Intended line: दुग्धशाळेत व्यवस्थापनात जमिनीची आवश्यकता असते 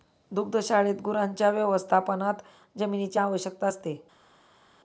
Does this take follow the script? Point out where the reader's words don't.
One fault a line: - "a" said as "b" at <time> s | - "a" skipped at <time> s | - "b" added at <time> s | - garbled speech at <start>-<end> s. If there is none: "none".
- "गुरांच्या" added at 1.0 s